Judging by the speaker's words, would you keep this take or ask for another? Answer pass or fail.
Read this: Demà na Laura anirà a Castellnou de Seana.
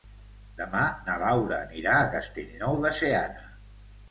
pass